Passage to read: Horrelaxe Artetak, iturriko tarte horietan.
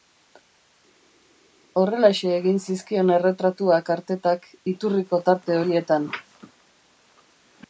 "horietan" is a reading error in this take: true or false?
false